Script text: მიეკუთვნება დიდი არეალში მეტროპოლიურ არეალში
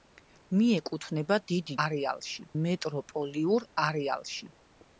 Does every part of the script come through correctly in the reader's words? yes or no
yes